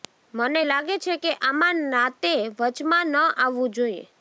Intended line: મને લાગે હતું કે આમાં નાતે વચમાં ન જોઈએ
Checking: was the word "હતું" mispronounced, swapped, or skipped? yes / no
yes